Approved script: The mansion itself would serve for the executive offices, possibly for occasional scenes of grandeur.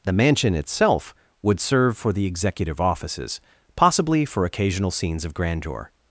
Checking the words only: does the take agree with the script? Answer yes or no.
yes